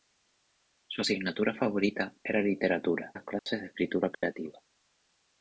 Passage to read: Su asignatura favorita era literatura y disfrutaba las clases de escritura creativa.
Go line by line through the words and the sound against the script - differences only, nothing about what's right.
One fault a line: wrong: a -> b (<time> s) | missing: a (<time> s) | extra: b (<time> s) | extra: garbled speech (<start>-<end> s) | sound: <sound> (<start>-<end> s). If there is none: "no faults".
missing: y disfrutaba (3.1 s)
sound: dropout (3.4-3.5 s)
sound: dropout (4.1-4.2 s)